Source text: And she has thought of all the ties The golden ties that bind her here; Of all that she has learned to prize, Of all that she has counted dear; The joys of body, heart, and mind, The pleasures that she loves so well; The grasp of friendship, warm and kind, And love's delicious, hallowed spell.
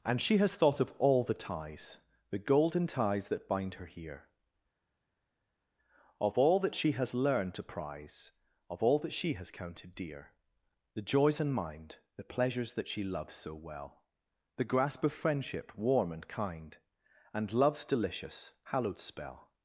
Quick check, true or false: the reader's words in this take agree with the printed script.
false